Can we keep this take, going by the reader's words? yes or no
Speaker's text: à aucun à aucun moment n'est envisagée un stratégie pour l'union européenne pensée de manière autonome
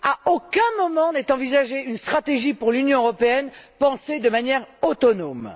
no